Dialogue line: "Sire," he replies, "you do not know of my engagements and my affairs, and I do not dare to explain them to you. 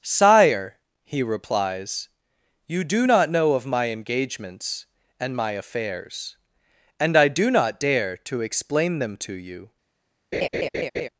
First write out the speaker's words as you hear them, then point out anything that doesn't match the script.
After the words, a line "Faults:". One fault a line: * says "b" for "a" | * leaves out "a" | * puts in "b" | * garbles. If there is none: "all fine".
"Sire," he replies, "you do not know of my engagements and my affairs, and I do not dare to explain them to you.
Faults:
all fine